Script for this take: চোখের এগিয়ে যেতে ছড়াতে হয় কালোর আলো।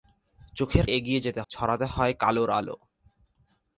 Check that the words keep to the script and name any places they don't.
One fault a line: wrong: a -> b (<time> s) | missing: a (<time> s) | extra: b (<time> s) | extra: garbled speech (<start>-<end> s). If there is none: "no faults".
no faults